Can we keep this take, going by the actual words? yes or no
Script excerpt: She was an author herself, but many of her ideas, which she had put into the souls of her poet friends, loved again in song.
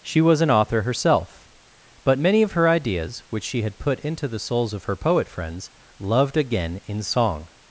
yes